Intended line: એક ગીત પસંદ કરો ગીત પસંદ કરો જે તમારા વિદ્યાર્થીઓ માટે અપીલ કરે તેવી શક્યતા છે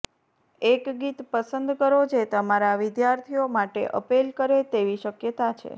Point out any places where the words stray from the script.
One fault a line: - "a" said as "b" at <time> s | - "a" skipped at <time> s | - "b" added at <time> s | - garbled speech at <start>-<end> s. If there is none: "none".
- "ગીત પસંદ કરો" skipped at 2.0 s